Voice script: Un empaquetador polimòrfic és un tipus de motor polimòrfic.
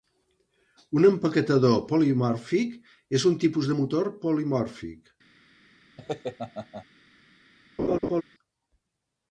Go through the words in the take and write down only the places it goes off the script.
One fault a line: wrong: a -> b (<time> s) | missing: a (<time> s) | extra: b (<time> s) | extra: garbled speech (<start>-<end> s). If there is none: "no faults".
no faults